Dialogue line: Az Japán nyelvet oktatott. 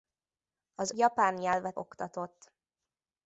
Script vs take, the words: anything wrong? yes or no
no